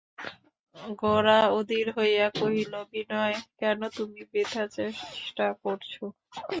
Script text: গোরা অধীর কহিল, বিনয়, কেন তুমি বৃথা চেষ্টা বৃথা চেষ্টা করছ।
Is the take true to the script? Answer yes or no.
no